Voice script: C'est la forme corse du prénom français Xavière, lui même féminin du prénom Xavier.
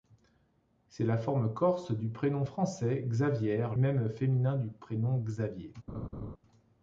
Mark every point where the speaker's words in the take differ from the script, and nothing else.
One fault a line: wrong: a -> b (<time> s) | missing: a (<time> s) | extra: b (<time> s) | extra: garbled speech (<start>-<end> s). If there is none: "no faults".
missing: lui (3.7 s)